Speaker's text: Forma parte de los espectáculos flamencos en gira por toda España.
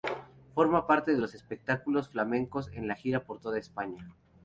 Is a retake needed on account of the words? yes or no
no